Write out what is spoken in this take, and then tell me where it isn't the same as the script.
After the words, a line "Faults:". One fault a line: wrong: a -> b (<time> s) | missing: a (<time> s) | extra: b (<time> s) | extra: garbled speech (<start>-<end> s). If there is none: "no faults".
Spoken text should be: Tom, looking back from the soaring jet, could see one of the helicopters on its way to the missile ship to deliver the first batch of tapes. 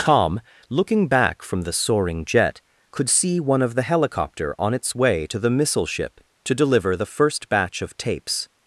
Tom, looking back from the soaring jet, could see one of the helicopter on its way to the missile ship to deliver the first batch of tapes.
Faults:
wrong: helicopters -> helicopter (3.8 s)